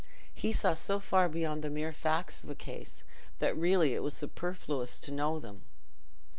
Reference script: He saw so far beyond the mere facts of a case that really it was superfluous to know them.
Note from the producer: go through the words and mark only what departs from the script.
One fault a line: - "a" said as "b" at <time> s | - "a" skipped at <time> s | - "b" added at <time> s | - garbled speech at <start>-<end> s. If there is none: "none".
none